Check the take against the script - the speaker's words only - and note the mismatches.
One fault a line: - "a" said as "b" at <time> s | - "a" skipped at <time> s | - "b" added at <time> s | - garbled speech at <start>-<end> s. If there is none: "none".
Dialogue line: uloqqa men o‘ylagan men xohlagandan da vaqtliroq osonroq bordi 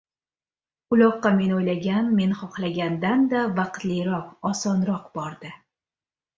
none